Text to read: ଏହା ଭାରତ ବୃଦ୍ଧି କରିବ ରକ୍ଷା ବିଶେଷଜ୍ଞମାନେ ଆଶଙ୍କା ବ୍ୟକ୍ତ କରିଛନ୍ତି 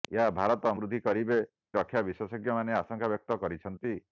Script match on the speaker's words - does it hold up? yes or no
yes